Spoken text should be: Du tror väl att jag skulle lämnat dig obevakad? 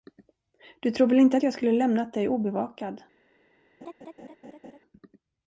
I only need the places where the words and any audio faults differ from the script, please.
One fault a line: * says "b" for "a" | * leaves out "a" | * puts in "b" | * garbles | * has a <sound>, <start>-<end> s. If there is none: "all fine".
* puts in "inte"
* has a laugh, 3.8-4.8 s